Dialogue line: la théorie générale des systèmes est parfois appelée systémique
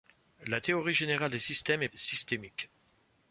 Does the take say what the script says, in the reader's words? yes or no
no